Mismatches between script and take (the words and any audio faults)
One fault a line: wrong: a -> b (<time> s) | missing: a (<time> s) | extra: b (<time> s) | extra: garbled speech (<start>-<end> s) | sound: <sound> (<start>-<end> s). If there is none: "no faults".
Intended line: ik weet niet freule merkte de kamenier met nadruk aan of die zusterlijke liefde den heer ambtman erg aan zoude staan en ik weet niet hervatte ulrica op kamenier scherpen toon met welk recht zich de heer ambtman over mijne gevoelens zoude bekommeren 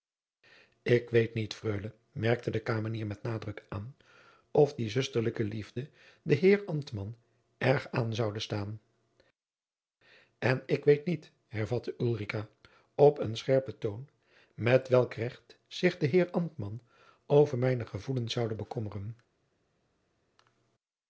wrong: kamenier -> een (13.2 s)